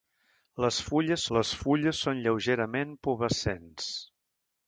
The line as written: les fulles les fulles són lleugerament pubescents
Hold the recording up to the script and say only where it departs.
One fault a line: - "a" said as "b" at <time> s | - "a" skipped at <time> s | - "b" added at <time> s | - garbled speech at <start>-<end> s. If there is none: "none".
none